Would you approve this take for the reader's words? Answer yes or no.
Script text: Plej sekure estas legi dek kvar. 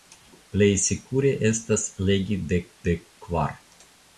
no